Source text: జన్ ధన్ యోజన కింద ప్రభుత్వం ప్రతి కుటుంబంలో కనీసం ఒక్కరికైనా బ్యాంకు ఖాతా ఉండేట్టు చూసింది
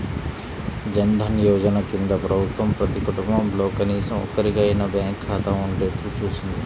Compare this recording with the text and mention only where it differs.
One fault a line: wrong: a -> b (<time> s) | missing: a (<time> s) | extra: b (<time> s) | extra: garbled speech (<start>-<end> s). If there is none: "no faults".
no faults